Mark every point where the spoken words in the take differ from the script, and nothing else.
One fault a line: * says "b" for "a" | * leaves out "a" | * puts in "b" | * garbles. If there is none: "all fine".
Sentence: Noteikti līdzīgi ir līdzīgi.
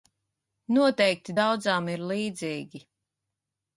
* says "daudzām" for "līdzīgi"